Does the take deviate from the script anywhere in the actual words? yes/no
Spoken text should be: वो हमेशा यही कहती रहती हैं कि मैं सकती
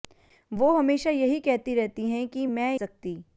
no